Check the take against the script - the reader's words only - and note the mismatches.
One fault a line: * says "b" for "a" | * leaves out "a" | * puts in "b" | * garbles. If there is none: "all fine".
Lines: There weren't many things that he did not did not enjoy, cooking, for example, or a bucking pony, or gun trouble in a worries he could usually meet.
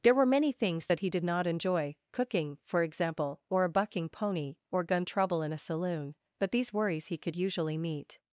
* says "were" for "weren't"
* leaves out "did not"
* puts in "saloon but these"